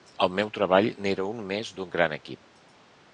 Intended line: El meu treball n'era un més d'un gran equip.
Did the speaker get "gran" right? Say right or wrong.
right